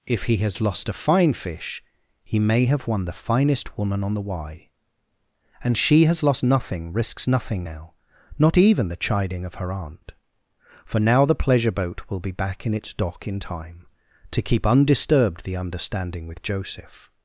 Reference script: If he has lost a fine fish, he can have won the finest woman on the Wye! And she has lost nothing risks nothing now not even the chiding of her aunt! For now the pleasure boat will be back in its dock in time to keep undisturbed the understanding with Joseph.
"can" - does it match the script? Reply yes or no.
no